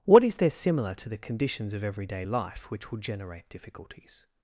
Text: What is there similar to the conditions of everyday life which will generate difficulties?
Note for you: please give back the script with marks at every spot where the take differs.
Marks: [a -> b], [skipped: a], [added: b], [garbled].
What is there similar to the conditions of everyday life which will generate difficulties?